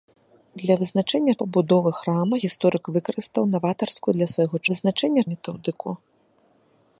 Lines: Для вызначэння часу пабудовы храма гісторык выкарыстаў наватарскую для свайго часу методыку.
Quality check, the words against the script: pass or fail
fail